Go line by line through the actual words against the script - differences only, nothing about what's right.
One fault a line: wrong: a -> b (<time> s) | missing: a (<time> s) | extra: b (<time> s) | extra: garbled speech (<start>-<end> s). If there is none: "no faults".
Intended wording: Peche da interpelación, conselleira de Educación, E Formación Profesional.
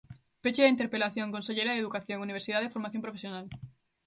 extra: Universidade (2.3 s)